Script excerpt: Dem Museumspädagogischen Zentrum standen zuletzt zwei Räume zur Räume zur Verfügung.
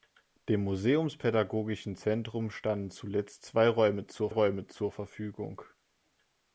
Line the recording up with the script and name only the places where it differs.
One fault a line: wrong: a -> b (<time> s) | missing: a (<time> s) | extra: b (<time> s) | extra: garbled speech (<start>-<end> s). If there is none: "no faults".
no faults